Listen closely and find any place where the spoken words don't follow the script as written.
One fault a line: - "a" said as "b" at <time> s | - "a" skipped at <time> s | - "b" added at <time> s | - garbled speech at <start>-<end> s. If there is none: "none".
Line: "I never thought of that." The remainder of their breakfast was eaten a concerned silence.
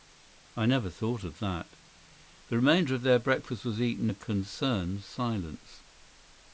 none